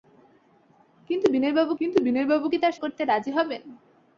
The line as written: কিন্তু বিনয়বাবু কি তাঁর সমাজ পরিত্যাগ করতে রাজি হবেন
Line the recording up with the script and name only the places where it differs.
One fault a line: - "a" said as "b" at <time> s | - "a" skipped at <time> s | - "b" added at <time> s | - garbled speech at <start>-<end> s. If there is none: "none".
- "কিন্তু বিনয়বাবু" added at 1.8 s
- "সমাজ পরিত্যাগ" skipped at 2.7 s